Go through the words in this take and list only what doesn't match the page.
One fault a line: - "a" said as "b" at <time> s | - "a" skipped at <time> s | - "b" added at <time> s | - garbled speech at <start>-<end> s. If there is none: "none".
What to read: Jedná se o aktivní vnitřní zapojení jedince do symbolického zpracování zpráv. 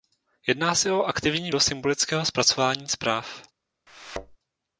- "vnitřní zapojení jedince" skipped at 1.5 s